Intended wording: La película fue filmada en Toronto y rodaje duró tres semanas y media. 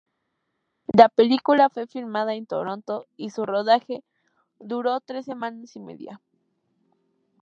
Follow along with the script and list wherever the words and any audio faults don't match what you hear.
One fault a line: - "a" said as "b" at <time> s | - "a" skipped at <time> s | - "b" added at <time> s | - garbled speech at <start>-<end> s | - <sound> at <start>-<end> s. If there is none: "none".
- "su" added at 3.3 s